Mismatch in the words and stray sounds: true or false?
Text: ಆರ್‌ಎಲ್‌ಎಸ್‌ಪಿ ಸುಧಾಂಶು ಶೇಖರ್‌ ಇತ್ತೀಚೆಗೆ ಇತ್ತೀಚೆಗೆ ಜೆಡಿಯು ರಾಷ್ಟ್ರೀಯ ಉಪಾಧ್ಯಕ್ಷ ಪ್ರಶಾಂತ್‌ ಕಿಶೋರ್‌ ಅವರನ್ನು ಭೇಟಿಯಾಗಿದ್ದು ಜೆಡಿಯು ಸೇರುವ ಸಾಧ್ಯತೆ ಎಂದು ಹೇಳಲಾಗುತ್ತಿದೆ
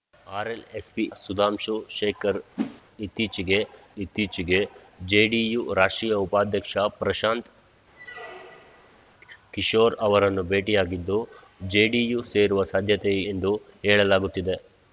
true